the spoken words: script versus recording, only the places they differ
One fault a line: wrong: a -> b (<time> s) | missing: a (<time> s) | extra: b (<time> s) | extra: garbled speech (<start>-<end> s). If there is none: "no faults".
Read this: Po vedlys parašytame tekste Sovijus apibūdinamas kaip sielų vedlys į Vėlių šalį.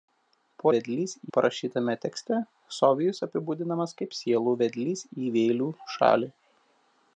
no faults